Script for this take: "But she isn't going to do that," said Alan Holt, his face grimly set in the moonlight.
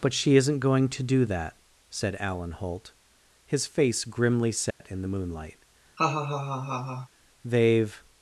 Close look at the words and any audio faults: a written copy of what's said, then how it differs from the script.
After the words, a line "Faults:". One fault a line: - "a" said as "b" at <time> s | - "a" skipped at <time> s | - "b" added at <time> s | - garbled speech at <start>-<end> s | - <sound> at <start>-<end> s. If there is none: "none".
"But she isn't going to do that," said Alan Holt, his face grimly set in the moonlight. "They've
Faults:
- dropout at 4.7-4.8 s
- laugh at 6.0-7.1 s
- "They've" added at 7.4 s